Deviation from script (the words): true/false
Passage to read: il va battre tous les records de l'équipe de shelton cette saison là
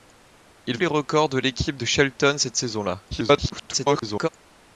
true